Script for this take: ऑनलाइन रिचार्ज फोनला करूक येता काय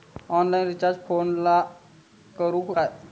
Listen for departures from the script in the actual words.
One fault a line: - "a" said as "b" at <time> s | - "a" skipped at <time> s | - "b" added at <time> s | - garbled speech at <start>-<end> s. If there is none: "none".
- "येता" skipped at 2.8 s